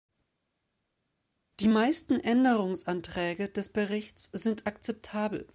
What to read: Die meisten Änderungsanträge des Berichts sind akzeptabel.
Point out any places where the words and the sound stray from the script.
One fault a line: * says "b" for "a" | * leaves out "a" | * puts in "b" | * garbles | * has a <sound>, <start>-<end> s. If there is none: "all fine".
all fine